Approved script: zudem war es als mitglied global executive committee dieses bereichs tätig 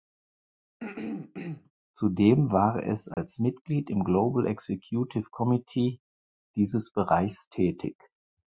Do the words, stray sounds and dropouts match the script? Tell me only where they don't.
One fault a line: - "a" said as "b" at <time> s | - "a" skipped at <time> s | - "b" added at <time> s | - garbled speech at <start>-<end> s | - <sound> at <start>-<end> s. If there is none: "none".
- throat clearing at 0.8-1.7 s
- dropout at 3.1-3.2 s
- "im" added at 3.9 s